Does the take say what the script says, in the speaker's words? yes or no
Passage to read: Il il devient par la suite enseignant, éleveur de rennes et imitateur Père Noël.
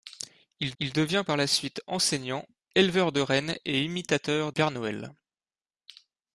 yes